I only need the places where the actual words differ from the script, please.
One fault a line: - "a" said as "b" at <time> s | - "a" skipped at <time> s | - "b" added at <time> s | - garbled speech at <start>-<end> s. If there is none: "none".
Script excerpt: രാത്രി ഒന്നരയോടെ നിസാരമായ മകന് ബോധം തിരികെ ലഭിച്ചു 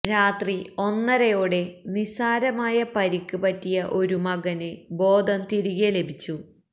- "പരിക്ക് പറ്റിയ ഒരു" added at 3.0 s